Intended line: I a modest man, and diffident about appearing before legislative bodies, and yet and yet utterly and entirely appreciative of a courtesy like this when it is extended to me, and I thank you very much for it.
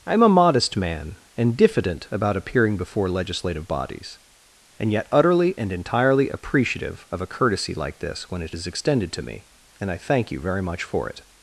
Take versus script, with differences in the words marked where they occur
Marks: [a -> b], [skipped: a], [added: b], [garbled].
I [added: am] a modest man, and diffident about appearing before legislative bodies, and yet [skipped: and yet] utterly and entirely appreciative of a courtesy like this when it is extended to me, and I thank you very much for it.